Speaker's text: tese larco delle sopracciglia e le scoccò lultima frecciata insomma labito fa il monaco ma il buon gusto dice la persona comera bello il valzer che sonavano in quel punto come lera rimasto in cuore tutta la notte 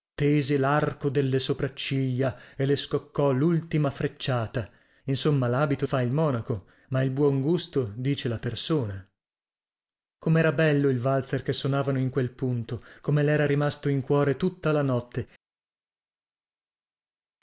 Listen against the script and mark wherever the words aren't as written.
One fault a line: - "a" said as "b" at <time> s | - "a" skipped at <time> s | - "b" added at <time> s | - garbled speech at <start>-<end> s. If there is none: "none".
none